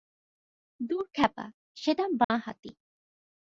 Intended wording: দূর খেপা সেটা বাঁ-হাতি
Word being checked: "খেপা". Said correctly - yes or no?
yes